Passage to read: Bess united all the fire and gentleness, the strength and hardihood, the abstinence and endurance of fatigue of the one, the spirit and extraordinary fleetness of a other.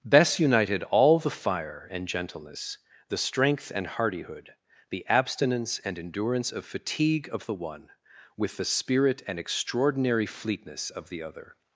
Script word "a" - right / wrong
wrong